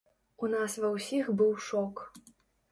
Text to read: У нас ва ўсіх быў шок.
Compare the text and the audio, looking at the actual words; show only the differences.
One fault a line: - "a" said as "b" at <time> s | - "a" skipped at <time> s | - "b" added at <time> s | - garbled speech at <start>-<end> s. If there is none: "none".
none